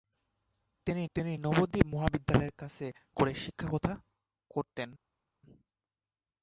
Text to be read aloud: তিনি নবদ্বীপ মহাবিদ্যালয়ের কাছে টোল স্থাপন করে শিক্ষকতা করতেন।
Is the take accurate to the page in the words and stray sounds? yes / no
no